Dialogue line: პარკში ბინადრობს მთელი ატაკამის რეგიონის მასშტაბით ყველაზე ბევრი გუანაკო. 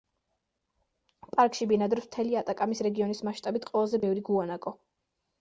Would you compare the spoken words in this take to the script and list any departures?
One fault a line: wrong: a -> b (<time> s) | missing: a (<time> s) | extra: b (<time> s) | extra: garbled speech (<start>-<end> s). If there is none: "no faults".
no faults